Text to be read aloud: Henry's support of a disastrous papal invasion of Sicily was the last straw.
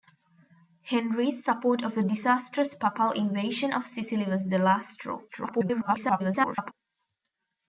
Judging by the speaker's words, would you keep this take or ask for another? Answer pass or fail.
fail